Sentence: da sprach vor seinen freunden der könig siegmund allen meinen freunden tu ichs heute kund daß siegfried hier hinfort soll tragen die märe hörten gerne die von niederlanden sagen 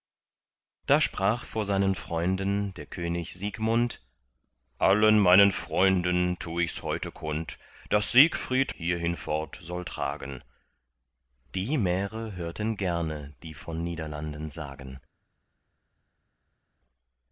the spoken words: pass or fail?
pass